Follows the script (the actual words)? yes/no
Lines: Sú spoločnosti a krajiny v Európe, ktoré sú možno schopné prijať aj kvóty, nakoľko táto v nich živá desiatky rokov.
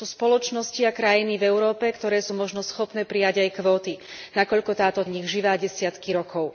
yes